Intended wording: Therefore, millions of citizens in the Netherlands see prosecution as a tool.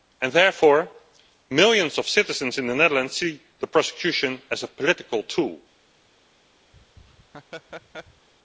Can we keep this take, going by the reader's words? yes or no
no